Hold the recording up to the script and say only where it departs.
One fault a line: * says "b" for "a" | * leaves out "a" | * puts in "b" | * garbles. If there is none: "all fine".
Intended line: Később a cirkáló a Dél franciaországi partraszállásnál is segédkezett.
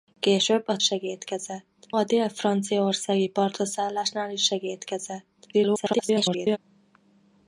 * says "segédkezett" for "cirkáló"
* garbles